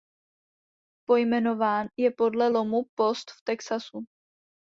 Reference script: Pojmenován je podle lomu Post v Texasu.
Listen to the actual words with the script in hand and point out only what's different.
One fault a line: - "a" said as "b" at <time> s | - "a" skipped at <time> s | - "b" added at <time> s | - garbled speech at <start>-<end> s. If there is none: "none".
none